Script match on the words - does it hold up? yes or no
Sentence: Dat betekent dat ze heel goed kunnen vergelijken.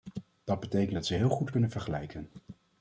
yes